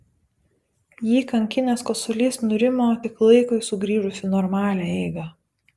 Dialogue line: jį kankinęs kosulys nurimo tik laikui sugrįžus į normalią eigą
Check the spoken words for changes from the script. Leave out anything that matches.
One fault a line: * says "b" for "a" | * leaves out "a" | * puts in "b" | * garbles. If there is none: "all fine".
all fine